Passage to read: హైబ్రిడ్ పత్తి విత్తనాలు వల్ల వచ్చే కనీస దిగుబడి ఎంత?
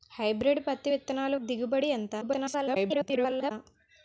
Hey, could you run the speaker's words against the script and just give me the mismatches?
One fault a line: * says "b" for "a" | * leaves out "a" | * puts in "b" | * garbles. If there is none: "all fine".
* leaves out "వల్ల వచ్చే కనీస"
* garbles